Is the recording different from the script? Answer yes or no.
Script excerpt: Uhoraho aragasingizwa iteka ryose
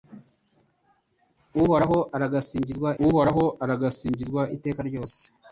yes